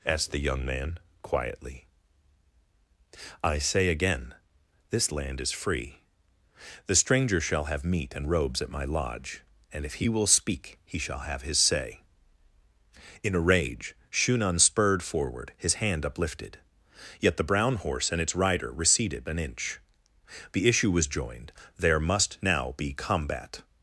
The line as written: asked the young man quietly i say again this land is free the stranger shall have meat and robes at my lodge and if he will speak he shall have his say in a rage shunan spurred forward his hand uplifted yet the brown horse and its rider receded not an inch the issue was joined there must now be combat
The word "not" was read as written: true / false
false